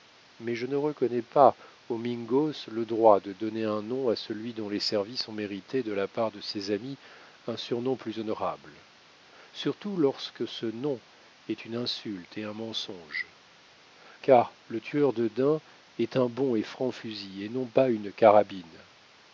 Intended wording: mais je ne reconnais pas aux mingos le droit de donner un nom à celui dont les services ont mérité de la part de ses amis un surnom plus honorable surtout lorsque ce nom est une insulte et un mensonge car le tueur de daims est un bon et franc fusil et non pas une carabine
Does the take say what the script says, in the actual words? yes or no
yes